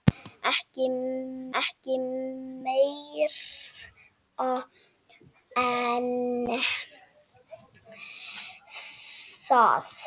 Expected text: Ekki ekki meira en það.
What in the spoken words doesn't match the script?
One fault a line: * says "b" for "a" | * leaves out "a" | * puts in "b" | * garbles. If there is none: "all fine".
all fine